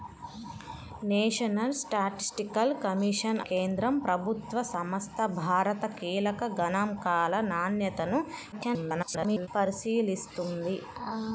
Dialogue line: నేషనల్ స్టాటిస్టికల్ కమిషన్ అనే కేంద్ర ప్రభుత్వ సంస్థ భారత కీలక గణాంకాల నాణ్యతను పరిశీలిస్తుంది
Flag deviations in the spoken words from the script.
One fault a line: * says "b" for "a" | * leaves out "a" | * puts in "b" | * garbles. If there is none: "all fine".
* leaves out "అనే"
* garbles